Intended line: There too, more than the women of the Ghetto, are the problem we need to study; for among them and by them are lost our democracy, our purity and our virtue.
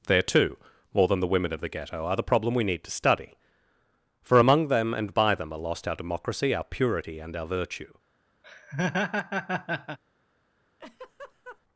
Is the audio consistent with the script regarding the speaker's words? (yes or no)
yes